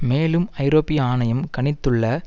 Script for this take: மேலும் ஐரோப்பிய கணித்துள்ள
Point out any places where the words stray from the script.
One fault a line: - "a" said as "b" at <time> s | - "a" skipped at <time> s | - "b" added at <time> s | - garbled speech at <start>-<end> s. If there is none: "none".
- "ஆணையம்" added at 1.0 s